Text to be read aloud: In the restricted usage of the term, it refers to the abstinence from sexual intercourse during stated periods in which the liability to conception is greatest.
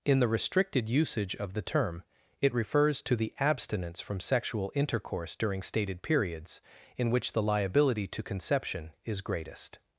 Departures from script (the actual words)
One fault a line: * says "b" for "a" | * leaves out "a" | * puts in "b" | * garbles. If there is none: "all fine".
all fine